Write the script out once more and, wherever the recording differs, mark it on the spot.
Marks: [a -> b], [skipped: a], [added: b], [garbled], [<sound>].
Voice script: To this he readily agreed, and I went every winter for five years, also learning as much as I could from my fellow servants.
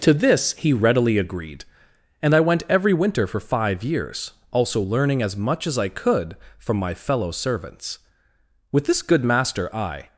To this he readily agreed, and I went every winter for five years, also learning as much as I could from my fellow servants. [added: With this good master I]